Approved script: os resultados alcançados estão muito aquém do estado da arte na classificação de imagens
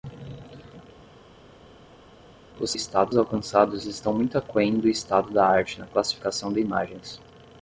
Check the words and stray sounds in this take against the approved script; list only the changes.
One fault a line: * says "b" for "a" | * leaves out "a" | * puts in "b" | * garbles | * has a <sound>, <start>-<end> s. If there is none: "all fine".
* says "estado" for "resultados"